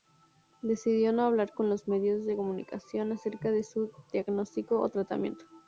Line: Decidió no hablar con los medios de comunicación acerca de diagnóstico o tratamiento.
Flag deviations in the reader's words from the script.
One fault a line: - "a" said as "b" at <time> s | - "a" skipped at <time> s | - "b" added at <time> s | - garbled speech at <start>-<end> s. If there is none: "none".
- "su" added at 3.6 s